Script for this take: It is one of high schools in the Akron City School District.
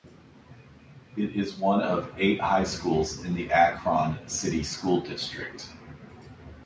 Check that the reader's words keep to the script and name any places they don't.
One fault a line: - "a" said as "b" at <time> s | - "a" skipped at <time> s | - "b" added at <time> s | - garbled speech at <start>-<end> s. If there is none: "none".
- "eight" added at 2.2 s